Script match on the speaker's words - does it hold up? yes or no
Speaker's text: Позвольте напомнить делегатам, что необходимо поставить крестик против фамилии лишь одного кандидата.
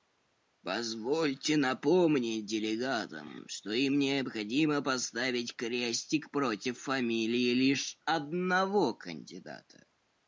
no